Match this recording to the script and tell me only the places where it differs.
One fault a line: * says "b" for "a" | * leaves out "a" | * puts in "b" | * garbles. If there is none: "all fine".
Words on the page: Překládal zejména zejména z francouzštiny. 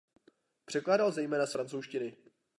* leaves out "zejména"